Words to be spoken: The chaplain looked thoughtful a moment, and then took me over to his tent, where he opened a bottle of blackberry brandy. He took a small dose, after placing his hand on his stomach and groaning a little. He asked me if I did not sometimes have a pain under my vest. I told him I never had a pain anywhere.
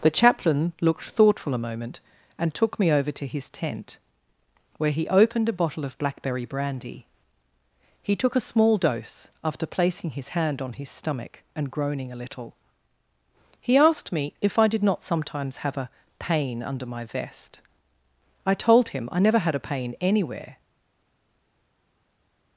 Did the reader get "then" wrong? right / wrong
wrong